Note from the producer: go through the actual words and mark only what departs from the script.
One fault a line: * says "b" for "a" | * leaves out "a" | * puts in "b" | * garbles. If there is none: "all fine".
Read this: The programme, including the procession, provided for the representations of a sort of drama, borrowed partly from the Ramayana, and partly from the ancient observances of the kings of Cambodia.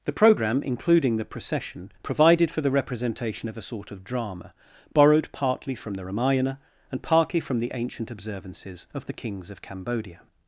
* says "representation" for "representations"